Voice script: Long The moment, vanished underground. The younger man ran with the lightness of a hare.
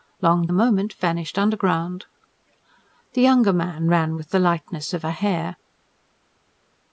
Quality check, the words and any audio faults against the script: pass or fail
pass